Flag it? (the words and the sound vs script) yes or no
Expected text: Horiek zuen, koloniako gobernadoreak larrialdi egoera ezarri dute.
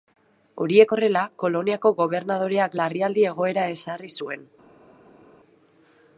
yes